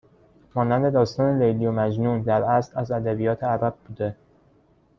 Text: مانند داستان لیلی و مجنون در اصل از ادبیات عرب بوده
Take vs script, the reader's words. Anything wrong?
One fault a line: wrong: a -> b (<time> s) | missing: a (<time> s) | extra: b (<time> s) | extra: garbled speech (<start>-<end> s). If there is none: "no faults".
no faults